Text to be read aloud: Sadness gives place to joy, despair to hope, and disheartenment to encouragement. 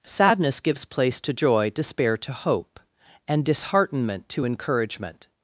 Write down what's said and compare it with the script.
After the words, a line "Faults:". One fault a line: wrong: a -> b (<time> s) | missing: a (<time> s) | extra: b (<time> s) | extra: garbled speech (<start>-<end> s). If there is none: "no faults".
Sadness gives place to joy, despair to hope, and disheartenment to encouragement.
Faults:
no faults